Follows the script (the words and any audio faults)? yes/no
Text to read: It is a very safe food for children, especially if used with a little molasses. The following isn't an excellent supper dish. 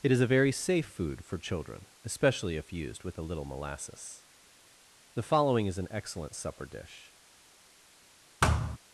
no